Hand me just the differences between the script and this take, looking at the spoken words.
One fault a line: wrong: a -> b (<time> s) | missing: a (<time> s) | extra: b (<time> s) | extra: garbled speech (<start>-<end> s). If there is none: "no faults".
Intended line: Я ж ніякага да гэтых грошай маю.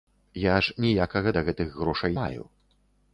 no faults